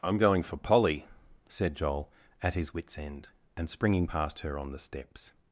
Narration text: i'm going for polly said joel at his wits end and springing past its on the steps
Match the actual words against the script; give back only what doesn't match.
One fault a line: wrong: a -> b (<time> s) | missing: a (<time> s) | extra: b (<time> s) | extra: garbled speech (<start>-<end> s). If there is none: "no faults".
wrong: its -> her (4.4 s)